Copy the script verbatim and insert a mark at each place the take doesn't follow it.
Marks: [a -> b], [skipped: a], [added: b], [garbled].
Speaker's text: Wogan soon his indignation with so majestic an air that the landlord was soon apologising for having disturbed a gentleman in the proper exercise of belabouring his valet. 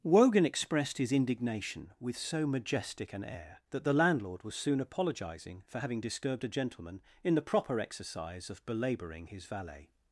Wogan [soon -> expressed] his indignation with so majestic an air that the landlord was soon apologising for having disturbed a gentleman in the proper exercise of belabouring his valet.